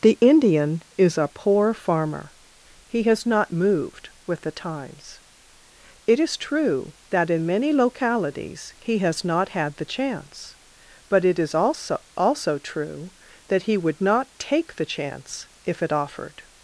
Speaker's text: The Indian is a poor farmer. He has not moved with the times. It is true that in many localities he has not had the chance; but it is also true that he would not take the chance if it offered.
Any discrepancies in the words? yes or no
yes